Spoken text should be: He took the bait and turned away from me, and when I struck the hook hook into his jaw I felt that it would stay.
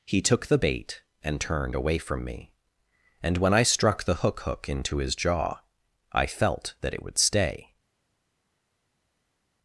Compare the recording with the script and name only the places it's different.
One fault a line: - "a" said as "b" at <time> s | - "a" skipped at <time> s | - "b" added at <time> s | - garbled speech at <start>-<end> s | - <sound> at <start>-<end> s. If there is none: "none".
none